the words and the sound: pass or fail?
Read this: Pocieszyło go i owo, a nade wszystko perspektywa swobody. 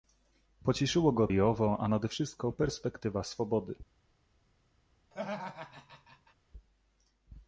fail